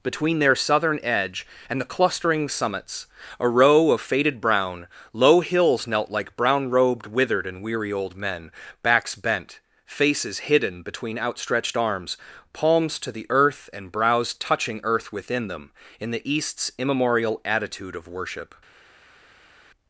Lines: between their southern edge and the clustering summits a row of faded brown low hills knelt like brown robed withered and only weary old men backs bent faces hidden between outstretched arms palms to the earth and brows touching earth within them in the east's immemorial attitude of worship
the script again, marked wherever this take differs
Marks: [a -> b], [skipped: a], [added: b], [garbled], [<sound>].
between their southern edge and the clustering summits a row of faded brown low hills knelt like brown robed withered and [skipped: only] weary old men backs bent faces hidden between outstretched arms palms to the earth and brows touching earth within them in the east's immemorial attitude of worship